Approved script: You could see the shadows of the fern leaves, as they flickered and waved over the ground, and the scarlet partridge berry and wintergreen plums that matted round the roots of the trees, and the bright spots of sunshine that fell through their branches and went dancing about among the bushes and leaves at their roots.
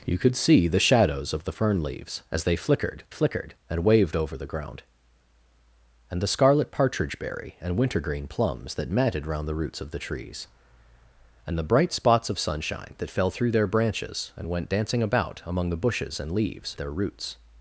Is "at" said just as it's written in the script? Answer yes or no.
no